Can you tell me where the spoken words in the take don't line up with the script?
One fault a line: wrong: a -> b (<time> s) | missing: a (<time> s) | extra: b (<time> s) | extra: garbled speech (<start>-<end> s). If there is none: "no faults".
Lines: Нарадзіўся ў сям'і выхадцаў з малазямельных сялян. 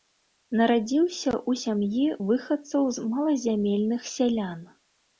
no faults